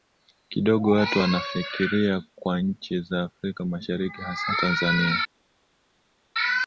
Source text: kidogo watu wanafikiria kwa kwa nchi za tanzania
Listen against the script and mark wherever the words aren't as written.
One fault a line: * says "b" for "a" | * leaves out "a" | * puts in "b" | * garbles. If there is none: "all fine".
* leaves out "kwa"
* puts in "afrika mashariki hasa"